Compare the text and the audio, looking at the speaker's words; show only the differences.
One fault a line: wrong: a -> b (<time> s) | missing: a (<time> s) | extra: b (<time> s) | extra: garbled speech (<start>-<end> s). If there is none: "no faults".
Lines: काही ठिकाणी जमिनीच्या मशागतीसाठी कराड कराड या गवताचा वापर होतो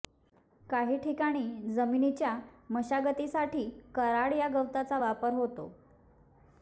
missing: कराड (4.3 s)